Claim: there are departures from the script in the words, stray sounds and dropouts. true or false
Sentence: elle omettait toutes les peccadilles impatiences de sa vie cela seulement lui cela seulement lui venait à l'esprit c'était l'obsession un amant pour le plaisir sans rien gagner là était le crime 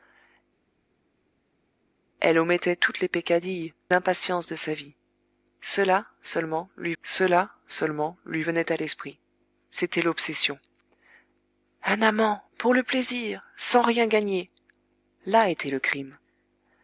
false